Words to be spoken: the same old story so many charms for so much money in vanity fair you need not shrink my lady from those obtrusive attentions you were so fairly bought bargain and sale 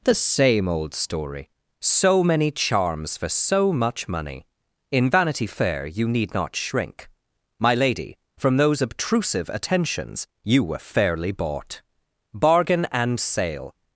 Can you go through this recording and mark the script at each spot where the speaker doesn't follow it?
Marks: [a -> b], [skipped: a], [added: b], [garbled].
the same old story so many charms for so much money in vanity fair you need not shrink my lady from those obtrusive attentions you were [skipped: so] fairly bought bargain and sale